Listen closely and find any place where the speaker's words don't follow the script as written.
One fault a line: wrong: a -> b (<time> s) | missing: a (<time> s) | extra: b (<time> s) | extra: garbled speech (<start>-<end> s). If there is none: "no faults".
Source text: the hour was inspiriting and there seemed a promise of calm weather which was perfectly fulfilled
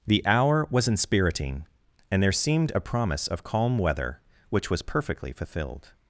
no faults